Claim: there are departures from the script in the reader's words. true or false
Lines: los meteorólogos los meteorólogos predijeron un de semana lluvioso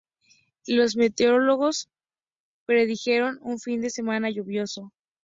true